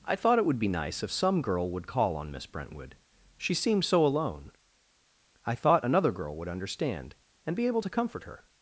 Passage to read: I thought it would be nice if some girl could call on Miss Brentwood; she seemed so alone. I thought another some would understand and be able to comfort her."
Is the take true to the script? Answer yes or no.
no